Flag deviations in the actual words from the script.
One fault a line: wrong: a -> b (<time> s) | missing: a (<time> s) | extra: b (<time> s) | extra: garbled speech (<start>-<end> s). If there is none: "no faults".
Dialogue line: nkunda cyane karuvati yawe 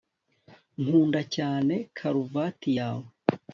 no faults